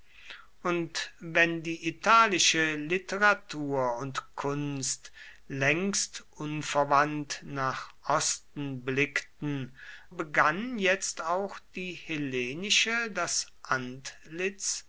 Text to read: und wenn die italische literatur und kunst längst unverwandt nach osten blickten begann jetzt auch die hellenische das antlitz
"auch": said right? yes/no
yes